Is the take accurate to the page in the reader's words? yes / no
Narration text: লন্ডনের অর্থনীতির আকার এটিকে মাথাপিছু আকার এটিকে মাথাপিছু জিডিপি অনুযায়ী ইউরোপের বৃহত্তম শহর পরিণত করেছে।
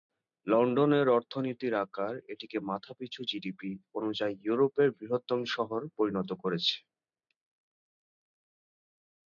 no